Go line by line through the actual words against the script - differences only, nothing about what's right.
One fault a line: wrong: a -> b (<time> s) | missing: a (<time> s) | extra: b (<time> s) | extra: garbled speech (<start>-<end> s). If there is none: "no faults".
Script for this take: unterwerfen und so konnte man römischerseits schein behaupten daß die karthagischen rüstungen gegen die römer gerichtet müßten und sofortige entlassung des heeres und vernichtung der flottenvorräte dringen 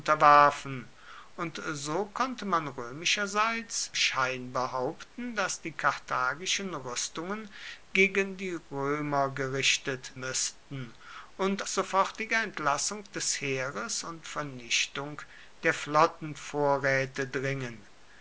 no faults